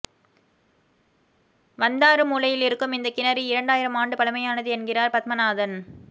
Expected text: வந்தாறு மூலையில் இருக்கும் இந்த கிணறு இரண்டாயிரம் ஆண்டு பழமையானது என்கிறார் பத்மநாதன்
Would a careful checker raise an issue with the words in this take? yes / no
no